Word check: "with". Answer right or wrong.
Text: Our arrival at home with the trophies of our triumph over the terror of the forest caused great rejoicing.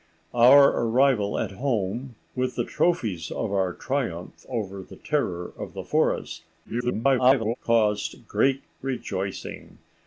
right